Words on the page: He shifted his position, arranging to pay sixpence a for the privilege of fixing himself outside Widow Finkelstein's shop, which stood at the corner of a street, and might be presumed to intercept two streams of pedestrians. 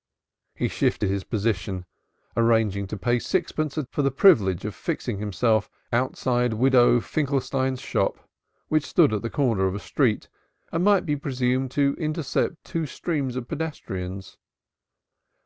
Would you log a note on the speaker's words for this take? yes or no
no